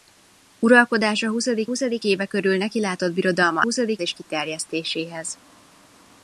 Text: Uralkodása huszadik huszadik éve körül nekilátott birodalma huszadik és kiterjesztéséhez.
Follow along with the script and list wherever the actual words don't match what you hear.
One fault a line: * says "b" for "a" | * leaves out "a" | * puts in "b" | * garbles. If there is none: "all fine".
all fine